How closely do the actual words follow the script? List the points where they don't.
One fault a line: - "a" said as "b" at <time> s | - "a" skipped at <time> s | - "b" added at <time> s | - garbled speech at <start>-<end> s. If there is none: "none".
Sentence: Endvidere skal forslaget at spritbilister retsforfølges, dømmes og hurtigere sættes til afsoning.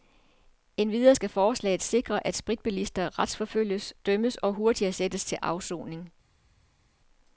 - "sikre" added at 1.8 s